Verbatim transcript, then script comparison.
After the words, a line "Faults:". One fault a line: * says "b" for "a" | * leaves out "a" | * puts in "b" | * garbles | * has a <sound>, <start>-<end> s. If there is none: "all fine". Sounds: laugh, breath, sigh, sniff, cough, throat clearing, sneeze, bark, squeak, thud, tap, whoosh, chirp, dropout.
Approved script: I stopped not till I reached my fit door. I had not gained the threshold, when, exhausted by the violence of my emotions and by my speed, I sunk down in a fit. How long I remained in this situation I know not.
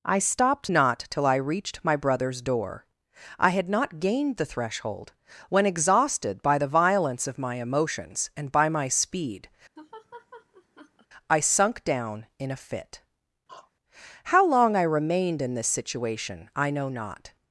I stopped not till I reached my brother's door. I had not gained the threshold, when, exhausted by the violence of my emotions and by my speed, I sunk down in a fit. How long I remained in this situation I know not.
Faults:
* says "brother's" for "fit"
* has a laugh, 9.8-11.1 s
* has a throat clearing, 13.5-13.7 s